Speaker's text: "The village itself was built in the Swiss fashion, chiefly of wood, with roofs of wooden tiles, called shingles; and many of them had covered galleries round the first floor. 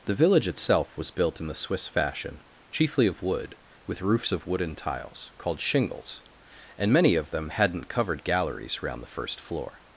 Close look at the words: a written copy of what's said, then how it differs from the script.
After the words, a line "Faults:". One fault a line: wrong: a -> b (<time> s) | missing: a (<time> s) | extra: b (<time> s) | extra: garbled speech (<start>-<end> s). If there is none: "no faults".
"The village itself was built in the Swiss fashion, chiefly of wood, with roofs of wooden tiles, called shingles; and many of them hadn't covered galleries round the first floor.
Faults:
wrong: had -> hadn't (7.5 s)